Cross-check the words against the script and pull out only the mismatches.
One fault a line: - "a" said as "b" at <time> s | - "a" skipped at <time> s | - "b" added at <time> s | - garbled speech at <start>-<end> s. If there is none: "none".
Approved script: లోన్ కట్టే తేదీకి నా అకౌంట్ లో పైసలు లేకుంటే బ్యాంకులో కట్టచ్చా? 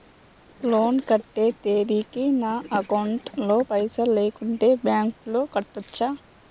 none